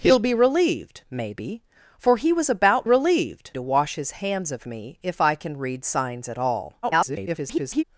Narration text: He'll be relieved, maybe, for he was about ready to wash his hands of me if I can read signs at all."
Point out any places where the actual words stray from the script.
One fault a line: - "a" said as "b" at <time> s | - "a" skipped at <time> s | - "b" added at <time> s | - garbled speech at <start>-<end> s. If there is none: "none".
- "ready" said as "relieved" at 2.8 s
- garbled speech at 6.8-7.8 s